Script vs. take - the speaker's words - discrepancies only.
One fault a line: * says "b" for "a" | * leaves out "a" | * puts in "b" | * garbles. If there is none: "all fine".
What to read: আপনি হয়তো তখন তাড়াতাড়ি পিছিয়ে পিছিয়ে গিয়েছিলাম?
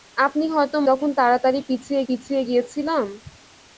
all fine